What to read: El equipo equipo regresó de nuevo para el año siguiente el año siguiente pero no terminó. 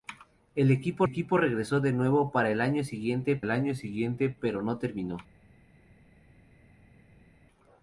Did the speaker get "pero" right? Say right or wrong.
right